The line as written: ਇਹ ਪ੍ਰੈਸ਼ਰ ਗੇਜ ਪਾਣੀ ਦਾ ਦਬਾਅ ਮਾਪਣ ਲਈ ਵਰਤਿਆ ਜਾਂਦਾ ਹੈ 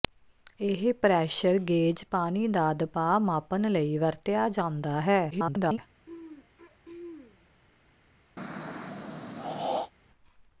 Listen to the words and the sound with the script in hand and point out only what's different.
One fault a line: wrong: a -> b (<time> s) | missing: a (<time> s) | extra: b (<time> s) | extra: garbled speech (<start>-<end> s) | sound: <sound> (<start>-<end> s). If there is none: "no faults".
extra: garbled speech (5.3-5.8 s)
sound: throat clearing (6.1-7.5 s)
sound: throat clearing (8.4-9.9 s)